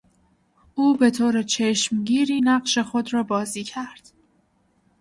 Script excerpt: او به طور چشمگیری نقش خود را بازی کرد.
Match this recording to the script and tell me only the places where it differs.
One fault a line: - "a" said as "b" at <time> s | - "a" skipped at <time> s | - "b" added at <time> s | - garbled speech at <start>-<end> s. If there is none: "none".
none